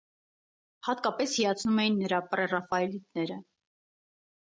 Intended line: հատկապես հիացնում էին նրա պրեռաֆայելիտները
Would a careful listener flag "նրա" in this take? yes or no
no